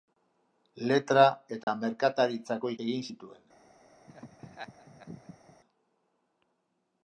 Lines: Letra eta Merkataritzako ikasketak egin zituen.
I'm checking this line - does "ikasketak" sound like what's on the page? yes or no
no